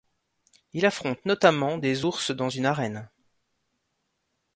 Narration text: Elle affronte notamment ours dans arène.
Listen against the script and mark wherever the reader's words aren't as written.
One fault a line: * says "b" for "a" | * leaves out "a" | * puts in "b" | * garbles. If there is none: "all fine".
* says "Il" for "Elle"
* puts in "des"
* puts in "une"